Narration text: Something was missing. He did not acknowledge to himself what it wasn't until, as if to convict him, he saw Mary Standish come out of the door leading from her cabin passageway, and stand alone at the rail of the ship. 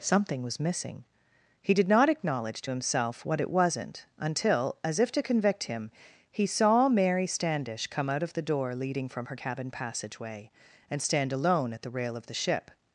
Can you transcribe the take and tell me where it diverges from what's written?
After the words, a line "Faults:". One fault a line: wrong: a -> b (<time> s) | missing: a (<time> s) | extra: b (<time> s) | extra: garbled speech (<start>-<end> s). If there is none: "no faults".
Something was missing. He did not acknowledge to himself what it wasn't until, as if to convict him, he saw Mary Standish come out of the door leading from her cabin passageway, and stand alone at the rail of the ship.
Faults:
no faults